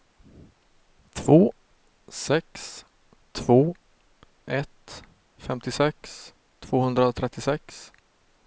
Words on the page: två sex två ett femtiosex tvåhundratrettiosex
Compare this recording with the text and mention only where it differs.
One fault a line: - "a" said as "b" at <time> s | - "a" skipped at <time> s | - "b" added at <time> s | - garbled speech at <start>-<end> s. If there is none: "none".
none